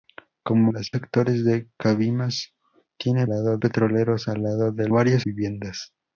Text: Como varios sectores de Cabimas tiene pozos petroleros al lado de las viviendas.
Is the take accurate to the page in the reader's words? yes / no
no